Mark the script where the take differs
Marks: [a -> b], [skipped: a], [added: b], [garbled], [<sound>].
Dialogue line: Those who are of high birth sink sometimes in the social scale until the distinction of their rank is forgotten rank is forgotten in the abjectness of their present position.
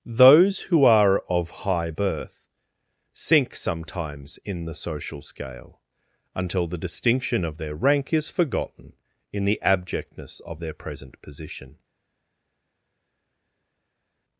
Those who are of high birth sink sometimes in the social scale until the distinction of their rank is forgotten [skipped: rank is forgotten] in the abjectness of their present position.